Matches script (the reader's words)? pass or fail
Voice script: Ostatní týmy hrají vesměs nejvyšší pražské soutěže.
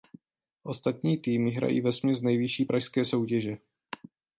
pass